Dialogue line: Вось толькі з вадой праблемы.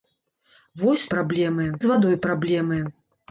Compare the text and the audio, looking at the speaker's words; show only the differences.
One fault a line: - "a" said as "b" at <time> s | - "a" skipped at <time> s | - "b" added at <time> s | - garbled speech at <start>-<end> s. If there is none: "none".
- "толькі" said as "праблемы" at 1.2 s